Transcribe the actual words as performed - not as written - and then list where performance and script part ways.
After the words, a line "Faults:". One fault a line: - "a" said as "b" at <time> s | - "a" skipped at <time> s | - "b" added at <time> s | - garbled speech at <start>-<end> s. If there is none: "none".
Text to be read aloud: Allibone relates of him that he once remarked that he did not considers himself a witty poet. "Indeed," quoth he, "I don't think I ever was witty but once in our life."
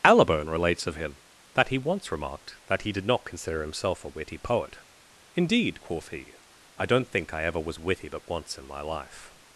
Allibone relates of him that he once remarked that he did not consider himself a witty poet. "Indeed," quoth he, "I don't think I ever was witty but once in my life."
Faults:
- "considers" said as "consider" at 3.2 s
- "our" said as "my" at 8.6 s